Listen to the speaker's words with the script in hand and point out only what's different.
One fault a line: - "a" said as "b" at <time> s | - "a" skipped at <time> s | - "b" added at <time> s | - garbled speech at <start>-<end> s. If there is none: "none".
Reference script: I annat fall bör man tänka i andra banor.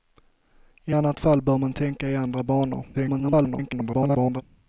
- garbled speech at 2.9-4.4 s